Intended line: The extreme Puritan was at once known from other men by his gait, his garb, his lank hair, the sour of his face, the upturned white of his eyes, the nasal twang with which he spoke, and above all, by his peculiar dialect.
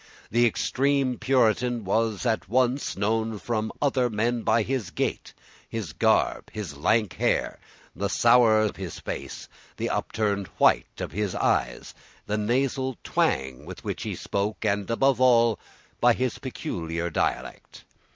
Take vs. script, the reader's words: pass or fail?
pass